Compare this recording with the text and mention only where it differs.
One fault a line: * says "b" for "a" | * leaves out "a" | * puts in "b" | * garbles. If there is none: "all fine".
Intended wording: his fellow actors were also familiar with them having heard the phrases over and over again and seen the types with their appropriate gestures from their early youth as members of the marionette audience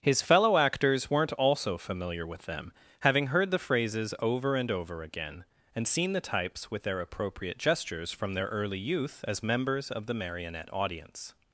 * says "weren't" for "were"